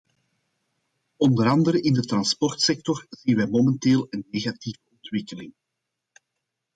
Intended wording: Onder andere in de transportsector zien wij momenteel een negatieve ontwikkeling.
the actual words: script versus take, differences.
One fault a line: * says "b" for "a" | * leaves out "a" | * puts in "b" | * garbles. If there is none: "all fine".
all fine